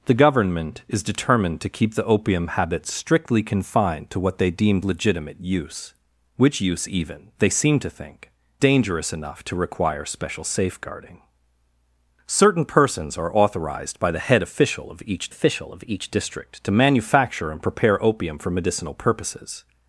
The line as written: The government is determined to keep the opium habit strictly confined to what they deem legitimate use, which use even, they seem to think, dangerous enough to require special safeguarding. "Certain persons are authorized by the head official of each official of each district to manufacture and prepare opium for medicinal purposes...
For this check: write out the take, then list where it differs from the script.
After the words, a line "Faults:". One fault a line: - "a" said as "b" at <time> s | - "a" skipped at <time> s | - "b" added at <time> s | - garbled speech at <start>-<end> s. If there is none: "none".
The government is determined to keep the opium habit strictly confined to what they deem legitimate use, which use even, they seem to think, dangerous enough to require special safeguarding. "Certain persons are authorized by the head official of each official of each district to manufacture and prepare opium for medicinal purposes...
Faults:
none